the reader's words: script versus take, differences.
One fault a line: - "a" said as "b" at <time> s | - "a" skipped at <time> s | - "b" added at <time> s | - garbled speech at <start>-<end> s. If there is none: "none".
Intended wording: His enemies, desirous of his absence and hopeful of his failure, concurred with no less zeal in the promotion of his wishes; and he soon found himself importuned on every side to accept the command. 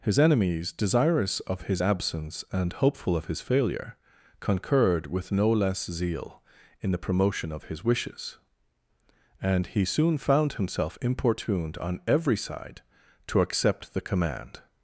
none